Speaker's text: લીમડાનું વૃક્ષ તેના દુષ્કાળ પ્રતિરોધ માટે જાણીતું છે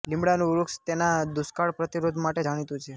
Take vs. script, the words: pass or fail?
pass